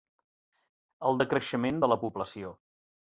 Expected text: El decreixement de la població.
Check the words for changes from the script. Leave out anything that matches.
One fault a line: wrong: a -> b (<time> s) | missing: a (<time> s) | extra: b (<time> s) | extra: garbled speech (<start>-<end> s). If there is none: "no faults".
no faults